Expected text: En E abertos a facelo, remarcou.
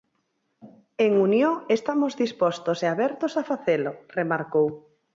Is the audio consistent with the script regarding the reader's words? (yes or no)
no